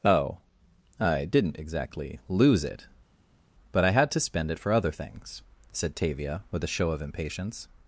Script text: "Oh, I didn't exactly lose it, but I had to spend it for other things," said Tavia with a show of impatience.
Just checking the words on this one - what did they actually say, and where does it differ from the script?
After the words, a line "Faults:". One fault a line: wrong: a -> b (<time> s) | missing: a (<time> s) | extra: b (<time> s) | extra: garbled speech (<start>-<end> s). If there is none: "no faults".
"Oh, I didn't exactly lose it, but I had to spend it for other things," said Tavia with a show of impatience.
Faults:
no faults